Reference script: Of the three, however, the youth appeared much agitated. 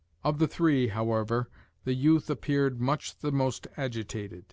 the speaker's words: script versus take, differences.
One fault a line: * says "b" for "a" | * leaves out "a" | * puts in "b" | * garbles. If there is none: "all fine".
* puts in "the most"